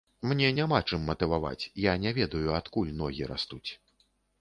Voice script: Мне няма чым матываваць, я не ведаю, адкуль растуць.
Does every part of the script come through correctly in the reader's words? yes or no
no